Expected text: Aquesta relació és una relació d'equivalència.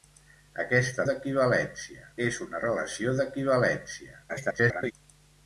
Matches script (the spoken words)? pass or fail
fail